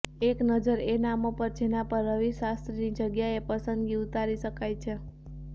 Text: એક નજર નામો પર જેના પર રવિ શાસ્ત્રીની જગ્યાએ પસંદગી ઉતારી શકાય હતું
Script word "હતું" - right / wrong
wrong